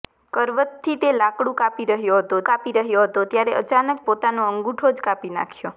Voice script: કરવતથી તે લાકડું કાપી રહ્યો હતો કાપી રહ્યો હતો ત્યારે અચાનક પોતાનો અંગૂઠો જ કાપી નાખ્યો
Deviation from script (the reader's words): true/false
false